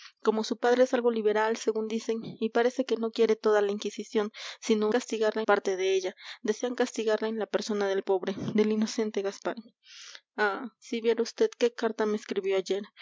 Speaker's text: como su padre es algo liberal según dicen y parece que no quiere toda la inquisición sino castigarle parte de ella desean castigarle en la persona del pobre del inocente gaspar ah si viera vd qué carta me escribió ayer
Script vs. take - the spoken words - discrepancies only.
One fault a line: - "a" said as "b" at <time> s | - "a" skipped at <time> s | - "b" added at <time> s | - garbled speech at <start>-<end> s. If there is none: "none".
none